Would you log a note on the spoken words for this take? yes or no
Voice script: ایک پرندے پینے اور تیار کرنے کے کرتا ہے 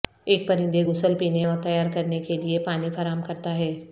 yes